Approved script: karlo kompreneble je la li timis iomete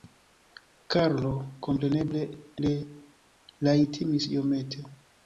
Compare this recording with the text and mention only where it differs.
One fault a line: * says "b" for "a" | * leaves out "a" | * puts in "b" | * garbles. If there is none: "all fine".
all fine